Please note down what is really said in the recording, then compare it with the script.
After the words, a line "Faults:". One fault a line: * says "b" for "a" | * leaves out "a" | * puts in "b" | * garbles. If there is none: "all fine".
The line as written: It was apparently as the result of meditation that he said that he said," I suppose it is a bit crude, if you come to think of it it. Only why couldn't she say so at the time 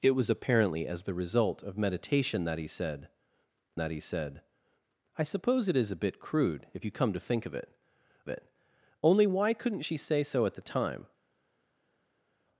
It was apparently as the result of meditation that he said that he said," I suppose it is a bit crude, if you come to think of it it. Only why couldn't she say so at the time
Faults:
all fine